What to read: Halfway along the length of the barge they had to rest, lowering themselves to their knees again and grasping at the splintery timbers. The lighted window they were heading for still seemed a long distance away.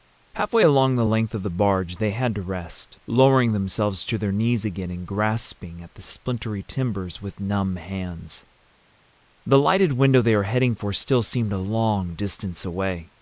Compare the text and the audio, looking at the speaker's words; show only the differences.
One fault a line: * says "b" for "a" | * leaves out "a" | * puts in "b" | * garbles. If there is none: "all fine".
* puts in "with numb hands"